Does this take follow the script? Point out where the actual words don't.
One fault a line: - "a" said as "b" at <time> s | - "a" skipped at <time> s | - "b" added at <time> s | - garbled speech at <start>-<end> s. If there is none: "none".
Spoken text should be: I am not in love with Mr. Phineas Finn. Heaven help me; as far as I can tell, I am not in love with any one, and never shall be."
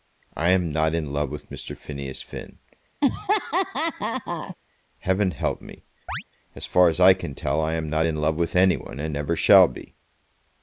none